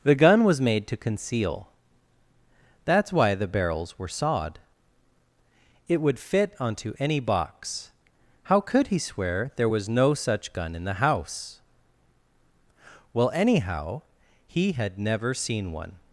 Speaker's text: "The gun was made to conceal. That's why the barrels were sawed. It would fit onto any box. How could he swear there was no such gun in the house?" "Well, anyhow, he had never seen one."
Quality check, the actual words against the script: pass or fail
pass